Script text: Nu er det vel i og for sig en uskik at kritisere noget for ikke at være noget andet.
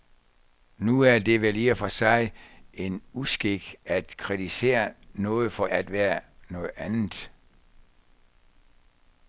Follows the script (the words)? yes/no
no